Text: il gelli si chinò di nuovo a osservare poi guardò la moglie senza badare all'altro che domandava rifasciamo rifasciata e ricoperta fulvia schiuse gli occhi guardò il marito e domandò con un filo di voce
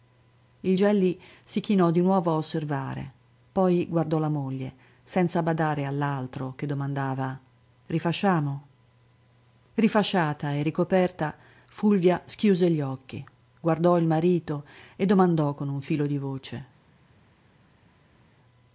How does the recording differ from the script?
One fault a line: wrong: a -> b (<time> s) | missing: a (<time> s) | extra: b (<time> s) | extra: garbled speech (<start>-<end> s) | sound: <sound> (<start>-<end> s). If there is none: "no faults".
no faults